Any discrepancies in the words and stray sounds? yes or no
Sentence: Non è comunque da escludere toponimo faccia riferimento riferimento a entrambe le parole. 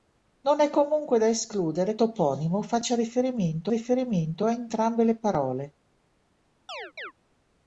yes